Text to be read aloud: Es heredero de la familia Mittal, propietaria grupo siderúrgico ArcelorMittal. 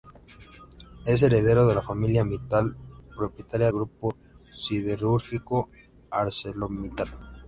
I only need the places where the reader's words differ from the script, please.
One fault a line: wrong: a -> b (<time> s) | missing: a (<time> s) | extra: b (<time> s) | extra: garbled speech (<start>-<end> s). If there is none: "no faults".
no faults